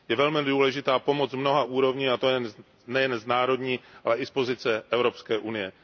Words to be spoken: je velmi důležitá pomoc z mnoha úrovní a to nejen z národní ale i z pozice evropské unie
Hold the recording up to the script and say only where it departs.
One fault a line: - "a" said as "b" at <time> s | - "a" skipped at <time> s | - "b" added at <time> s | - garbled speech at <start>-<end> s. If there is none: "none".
none